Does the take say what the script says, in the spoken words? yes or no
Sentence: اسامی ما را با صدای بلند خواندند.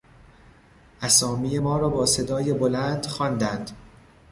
yes